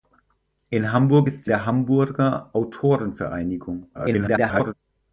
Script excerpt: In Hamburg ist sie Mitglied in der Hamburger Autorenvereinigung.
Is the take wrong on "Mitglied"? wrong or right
wrong